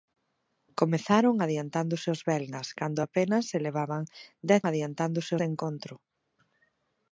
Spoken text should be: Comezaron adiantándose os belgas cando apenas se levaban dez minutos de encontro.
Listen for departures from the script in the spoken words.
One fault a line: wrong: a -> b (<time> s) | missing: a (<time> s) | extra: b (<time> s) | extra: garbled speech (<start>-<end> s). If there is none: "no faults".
wrong: minutos -> adiantándose (4.7 s)